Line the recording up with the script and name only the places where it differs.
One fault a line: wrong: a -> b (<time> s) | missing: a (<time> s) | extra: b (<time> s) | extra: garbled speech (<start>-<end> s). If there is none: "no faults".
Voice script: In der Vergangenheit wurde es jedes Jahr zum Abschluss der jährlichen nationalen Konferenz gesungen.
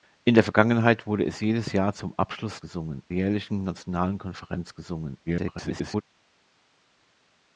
wrong: der -> gesungen (2.6 s)
extra: garbled speech (5.3-6.0 s)